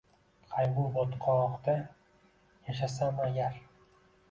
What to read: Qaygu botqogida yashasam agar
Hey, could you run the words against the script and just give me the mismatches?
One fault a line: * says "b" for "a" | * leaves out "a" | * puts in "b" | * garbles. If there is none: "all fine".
all fine